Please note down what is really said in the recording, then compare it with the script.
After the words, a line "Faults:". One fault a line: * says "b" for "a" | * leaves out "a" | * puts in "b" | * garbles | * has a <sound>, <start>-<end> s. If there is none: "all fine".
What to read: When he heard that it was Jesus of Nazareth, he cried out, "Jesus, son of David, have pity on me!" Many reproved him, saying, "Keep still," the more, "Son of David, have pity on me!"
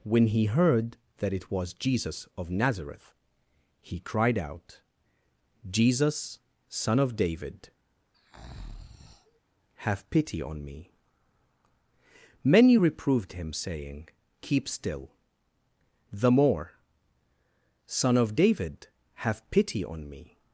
When he heard that it was Jesus of Nazareth, he cried out, "Jesus, son of David, have pity on me!" Many reproved him, saying, "Keep still," the more, "Son of David, have pity on me!"
Faults:
* has a breath, 8.1-9.4 s